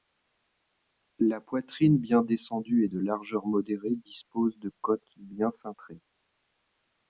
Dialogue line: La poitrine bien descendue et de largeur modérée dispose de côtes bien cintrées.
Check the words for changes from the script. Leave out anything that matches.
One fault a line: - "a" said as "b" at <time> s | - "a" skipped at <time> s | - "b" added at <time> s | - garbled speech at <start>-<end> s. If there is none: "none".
none